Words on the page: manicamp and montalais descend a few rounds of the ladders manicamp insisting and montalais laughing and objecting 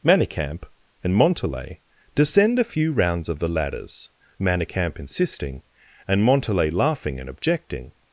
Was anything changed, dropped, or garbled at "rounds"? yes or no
no